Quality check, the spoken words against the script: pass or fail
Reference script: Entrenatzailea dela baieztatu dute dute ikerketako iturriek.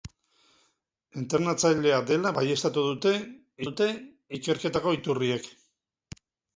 pass